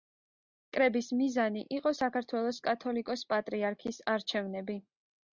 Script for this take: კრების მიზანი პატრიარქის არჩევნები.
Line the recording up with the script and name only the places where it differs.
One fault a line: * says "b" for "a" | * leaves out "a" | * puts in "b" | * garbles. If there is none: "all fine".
* puts in "იყო საქართველოს კათოლიკოს"